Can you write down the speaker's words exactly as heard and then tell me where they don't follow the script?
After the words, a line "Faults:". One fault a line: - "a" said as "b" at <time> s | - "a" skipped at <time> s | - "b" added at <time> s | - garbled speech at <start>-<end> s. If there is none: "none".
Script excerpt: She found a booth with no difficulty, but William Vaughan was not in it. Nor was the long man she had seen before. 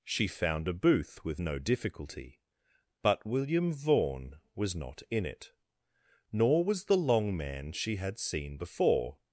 She found a booth with no difficulty, but William Vaughan was not in it. Nor was the long man she had seen before.
Faults:
none